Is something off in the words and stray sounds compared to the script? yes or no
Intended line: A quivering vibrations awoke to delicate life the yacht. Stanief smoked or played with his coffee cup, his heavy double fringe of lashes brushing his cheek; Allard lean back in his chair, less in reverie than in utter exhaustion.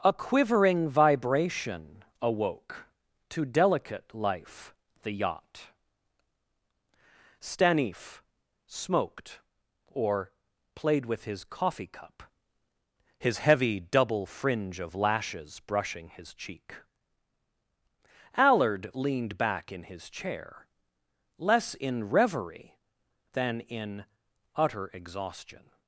yes